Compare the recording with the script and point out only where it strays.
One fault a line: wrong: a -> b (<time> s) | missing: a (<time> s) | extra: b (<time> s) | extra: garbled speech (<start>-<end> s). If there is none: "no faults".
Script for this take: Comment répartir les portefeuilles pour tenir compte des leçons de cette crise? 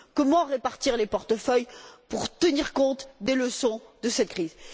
no faults